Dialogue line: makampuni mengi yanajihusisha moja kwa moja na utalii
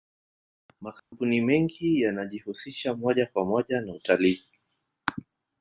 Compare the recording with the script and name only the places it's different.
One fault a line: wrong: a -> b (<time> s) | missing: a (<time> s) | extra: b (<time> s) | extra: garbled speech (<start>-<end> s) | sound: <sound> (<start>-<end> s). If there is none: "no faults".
sound: dropout (1.0-1.1 s)